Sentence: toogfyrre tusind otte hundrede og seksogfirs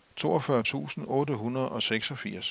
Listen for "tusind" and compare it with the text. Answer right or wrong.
right